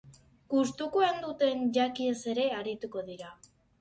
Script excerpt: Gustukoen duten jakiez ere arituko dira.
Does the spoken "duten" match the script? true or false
true